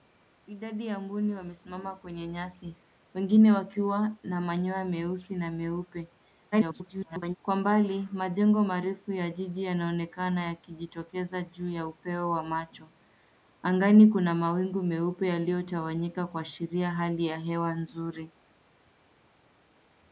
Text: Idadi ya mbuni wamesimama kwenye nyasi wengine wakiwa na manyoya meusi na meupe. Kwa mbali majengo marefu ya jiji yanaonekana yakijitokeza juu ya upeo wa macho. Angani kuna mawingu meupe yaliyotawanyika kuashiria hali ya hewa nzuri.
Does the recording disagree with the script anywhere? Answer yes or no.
yes